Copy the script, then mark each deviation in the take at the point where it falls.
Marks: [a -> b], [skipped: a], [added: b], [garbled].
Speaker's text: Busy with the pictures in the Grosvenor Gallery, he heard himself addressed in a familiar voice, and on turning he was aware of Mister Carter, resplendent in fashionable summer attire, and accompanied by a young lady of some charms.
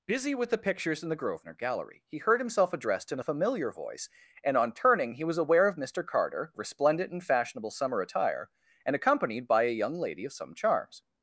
Busy with the pictures in the Grosvenor Gallery, he heard himself addressed in a familiar voice, and on turning he was aware of Mister Carter, resplendent in fashionable summer attire, and accompanied by a young lady of some charms.